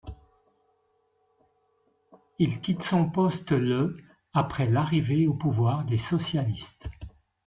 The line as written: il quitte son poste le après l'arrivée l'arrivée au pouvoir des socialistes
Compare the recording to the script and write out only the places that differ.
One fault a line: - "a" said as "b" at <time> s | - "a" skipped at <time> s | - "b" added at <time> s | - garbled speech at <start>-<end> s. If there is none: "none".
- "l'arrivée" skipped at 5.3 s